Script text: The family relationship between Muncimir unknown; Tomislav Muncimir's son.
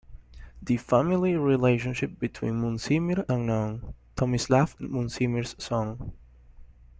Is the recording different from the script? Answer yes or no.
no